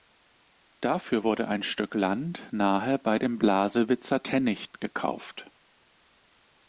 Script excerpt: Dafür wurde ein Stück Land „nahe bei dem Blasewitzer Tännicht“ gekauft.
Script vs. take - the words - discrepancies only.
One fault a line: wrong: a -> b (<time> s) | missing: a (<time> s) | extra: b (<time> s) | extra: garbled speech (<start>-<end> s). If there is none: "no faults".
no faults